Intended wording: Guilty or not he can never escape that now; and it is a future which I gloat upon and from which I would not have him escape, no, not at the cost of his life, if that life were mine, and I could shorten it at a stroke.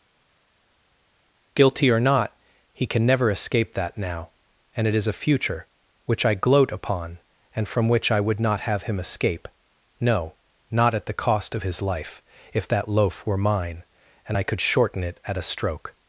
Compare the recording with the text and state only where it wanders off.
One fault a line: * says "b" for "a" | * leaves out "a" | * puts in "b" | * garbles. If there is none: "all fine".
* says "loaf" for "life"